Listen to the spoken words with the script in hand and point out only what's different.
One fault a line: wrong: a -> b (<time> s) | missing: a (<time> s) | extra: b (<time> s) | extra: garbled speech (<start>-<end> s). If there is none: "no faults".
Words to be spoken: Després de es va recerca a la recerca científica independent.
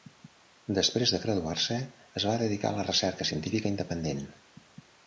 extra: graduar se (1.2 s)
wrong: recerca -> dedicar (2.5 s)